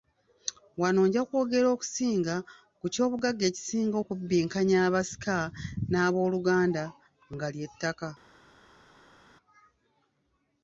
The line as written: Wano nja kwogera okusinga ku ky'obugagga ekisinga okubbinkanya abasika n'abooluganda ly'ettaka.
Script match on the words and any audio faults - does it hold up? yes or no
no